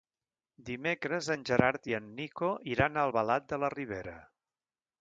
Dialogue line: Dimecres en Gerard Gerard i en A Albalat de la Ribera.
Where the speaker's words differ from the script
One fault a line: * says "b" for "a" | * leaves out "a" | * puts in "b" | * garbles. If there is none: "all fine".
* leaves out "Gerard"
* puts in "Nico iran"